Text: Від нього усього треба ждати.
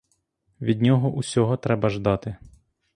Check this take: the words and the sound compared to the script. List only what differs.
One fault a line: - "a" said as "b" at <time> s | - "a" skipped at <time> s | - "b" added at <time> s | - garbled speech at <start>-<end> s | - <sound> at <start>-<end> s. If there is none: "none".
none